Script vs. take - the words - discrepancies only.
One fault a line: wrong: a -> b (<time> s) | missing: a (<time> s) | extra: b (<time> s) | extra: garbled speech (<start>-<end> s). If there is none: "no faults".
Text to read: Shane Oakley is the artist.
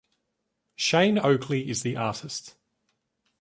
no faults